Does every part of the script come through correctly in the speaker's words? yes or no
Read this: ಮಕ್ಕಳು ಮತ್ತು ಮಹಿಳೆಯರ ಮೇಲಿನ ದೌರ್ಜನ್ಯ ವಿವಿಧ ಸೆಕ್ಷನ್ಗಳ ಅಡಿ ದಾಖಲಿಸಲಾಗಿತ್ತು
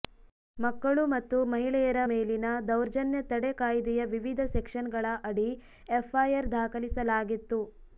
no